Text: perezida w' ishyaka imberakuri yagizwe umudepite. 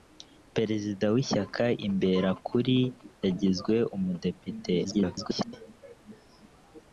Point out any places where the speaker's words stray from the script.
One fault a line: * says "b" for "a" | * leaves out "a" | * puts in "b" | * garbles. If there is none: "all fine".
* garbles